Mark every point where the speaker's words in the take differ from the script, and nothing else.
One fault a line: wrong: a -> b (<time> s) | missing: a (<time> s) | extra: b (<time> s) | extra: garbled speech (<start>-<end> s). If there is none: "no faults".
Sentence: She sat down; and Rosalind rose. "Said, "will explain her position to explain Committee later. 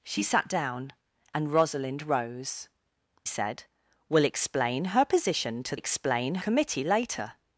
no faults